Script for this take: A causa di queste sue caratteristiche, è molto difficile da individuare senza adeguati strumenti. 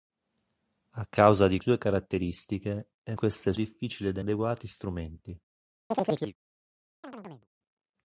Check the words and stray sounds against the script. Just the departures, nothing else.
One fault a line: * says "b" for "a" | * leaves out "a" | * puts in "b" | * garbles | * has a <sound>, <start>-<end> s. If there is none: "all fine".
* leaves out "queste"
* says "queste" for "molto"
* leaves out "individuare senza"
* has a chirp, 5.9-6.4 s
* has a chirp, 7.0-7.5 s